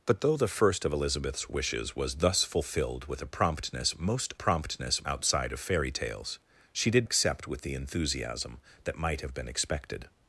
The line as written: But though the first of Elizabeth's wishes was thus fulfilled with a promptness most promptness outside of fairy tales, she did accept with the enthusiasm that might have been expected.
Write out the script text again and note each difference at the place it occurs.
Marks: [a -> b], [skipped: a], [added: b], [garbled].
But though the first of Elizabeth's wishes was thus fulfilled with a promptness most promptness outside of fairy tales, she did accept with the enthusiasm that might have been expected.